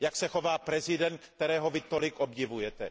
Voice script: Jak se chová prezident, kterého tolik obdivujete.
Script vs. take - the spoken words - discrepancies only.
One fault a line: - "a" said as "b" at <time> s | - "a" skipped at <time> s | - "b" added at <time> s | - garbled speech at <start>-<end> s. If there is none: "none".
- "vy" added at 1.7 s